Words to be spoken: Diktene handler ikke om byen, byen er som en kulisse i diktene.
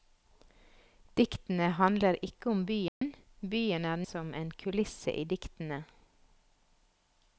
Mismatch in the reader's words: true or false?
false